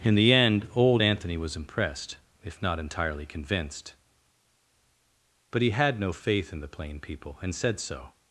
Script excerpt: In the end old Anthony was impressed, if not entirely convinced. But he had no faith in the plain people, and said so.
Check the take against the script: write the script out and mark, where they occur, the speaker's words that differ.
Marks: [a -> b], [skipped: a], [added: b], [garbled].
In the end old Anthony was impressed, if not entirely convinced. But he had no faith in the plain people, and said so.